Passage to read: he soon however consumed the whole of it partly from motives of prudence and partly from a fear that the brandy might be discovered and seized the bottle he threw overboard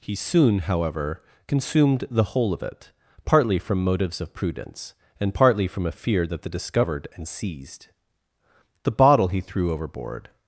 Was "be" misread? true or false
true